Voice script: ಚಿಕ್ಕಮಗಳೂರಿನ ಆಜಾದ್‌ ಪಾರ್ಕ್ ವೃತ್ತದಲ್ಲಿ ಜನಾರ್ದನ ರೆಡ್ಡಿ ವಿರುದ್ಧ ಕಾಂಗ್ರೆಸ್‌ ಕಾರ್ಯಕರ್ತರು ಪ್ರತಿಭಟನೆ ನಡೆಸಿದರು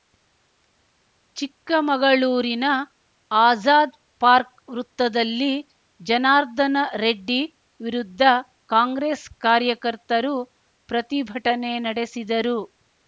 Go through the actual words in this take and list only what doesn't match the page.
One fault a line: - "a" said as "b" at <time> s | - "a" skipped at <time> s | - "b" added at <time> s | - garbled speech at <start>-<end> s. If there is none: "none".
none